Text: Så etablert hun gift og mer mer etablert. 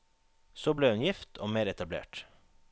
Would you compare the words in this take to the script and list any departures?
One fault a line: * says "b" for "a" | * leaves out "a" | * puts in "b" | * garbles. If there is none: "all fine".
* says "ble" for "etablert"
* leaves out "mer"